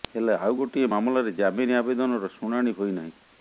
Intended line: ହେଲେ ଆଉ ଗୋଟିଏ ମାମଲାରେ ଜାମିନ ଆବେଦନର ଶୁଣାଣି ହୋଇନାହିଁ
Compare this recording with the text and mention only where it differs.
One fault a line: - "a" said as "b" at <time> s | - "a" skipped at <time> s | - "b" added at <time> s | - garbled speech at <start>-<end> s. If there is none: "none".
none